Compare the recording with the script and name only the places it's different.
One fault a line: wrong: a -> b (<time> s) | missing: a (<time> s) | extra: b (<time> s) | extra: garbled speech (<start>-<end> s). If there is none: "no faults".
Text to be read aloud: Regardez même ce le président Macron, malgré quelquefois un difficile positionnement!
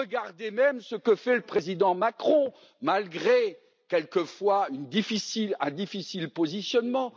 extra: que fait (0.9 s)